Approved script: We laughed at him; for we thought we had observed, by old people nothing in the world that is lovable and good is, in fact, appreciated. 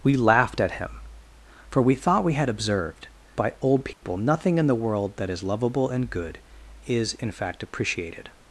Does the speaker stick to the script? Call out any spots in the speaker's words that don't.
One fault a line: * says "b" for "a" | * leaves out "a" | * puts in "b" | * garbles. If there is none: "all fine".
all fine